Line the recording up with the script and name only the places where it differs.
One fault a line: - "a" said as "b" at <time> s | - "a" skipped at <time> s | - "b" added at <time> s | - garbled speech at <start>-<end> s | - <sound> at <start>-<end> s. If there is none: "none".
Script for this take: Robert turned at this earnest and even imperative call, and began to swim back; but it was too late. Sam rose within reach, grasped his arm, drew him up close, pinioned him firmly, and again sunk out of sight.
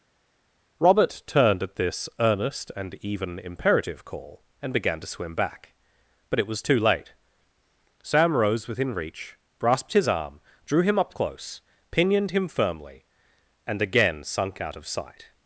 none